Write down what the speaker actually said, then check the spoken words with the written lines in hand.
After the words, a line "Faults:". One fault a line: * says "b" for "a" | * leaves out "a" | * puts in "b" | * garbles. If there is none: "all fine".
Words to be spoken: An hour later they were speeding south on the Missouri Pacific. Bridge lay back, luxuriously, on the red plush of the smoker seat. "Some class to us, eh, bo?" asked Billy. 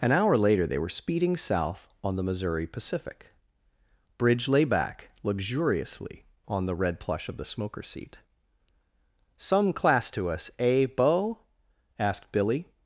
An hour later they were speeding south on the Missouri Pacific. Bridge lay back, luxuriously, on the red plush of the smoker seat. "Some class to us, eh, bo?" asked Billy.
Faults:
all fine